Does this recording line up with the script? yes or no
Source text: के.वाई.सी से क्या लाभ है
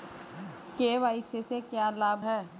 yes